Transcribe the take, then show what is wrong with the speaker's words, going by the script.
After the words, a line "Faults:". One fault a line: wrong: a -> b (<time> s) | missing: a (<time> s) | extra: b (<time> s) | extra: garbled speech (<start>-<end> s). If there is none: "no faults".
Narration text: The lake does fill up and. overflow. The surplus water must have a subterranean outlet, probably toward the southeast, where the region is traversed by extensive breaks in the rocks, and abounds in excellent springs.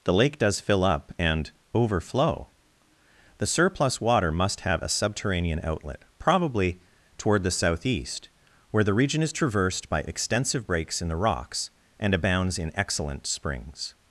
The lake does fill up and. overflow. The surplus water must have a subterranean outlet, probably toward the southeast, where the region is traversed by extensive breaks in the rocks, and abounds in excellent springs.
Faults:
no faults